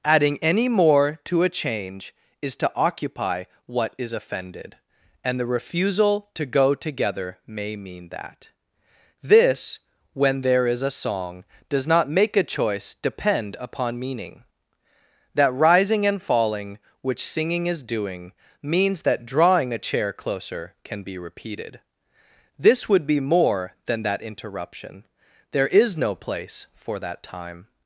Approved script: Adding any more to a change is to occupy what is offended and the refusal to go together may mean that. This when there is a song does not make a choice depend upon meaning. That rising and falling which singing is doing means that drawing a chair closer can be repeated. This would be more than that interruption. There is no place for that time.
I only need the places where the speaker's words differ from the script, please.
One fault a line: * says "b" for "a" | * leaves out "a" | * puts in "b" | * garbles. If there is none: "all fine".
all fine